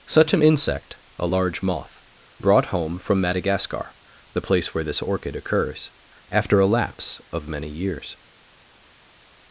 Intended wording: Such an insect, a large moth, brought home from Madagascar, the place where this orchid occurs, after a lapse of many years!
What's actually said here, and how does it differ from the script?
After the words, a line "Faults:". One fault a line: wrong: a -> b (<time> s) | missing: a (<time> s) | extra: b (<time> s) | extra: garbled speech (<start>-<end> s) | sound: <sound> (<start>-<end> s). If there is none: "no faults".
Such an insect, a large moth, brought home from Madagascar, the place where this orchid occurs, after a lapse of many years!
Faults:
no faults